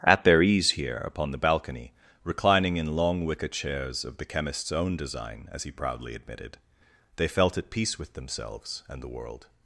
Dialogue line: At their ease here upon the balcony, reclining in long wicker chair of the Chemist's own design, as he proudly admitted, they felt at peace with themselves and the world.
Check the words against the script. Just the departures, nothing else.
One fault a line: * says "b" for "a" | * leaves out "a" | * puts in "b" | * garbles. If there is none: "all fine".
* says "chairs" for "chair"